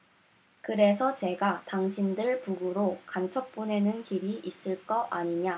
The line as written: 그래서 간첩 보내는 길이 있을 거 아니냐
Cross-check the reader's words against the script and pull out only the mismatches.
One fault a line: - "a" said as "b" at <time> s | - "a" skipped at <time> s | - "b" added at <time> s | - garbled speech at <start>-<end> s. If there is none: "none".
- "제가 당신들 북으로" added at 1.1 s